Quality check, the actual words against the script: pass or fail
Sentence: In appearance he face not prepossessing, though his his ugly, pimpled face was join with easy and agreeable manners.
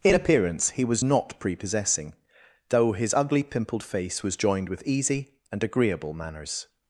fail